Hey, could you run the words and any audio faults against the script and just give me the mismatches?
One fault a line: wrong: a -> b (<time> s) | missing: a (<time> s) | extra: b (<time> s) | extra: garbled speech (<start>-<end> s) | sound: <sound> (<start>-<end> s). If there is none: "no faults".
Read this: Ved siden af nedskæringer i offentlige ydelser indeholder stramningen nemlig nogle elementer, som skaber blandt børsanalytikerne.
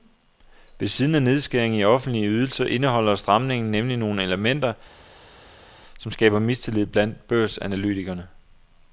extra: mistillid (6.4 s)